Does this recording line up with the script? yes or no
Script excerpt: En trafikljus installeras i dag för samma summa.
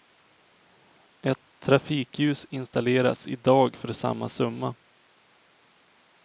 no